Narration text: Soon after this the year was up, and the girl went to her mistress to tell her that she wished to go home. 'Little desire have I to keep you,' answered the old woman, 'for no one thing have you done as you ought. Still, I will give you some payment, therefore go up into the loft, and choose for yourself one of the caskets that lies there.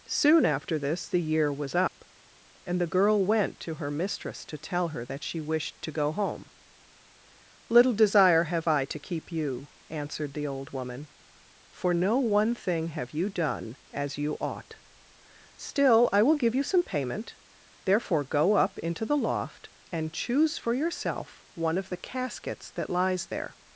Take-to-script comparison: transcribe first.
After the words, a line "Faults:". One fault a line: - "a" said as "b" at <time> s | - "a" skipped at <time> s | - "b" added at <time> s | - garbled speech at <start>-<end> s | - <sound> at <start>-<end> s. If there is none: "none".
Soon after this the year was up, and the girl went to her mistress to tell her that she wished to go home. 'Little desire have I to keep you,' answered the old woman, 'for no one thing have you done as you ought. Still, I will give you some payment, therefore go up into the loft, and choose for yourself one of the caskets that lies there.
Faults:
- dropout at 1.9-2.0 s